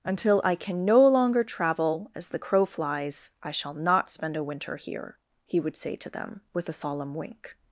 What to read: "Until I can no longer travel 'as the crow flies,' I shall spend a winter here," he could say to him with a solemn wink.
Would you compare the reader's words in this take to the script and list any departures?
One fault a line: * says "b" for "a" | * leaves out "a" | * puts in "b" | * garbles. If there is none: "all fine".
* puts in "not"
* says "would" for "could"
* says "them" for "him"